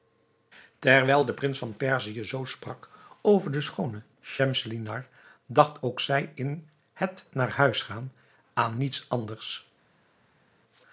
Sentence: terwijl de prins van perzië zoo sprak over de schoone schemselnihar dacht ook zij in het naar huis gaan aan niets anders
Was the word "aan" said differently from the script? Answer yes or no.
no